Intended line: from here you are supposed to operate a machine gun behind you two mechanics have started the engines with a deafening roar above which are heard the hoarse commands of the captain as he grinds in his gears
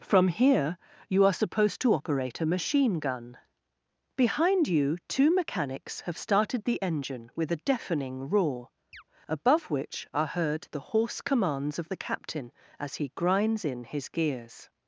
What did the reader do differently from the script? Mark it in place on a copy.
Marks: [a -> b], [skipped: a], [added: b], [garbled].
from here you are supposed to operate a machine gun behind you two mechanics have started the [engines -> engine] with a deafening roar above which are heard the hoarse commands of the captain as he grinds in his gears